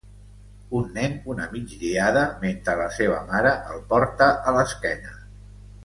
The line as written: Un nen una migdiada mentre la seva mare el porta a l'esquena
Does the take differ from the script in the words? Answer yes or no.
no